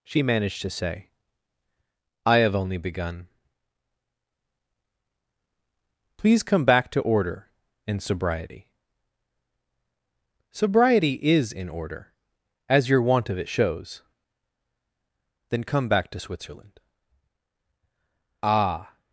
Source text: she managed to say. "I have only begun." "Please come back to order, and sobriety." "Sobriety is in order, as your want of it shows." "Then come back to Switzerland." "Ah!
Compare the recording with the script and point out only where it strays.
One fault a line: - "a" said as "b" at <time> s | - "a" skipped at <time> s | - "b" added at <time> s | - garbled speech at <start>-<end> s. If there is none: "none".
none